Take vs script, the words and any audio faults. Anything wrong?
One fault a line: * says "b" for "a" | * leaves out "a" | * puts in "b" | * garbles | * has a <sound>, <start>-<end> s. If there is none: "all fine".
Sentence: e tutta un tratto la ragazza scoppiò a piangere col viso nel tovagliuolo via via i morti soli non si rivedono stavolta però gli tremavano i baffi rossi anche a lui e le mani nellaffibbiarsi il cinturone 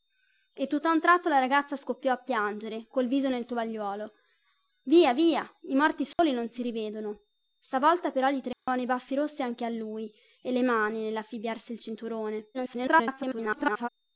* has a dropout, 6.1-6.2 s
* has a dropout, 8.5-8.7 s
* garbles